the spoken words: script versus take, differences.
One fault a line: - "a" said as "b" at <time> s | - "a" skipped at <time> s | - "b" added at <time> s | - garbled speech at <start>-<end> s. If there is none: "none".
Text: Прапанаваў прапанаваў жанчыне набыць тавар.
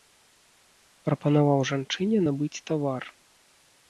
- "прапанаваў" skipped at 1.6 s